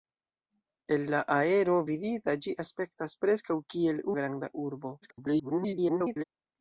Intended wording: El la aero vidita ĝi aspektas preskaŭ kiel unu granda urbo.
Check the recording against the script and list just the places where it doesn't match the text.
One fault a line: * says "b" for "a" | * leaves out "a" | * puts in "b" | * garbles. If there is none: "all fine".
* leaves out "unu"
* garbles